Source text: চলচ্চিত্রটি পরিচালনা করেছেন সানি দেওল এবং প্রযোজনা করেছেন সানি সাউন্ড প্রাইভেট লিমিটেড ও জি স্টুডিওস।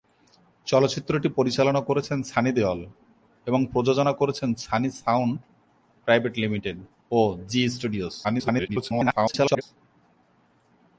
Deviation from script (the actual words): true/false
true